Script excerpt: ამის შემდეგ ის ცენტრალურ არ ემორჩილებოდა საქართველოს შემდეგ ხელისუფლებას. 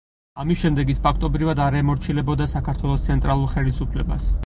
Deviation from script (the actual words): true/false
true